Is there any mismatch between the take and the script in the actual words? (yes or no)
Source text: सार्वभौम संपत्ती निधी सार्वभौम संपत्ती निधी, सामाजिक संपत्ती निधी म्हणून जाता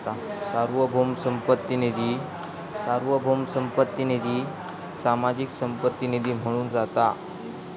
no